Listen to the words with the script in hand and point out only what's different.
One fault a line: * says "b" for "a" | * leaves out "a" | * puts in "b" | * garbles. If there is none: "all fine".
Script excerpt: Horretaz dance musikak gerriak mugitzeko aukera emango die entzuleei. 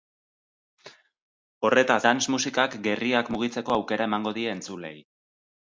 all fine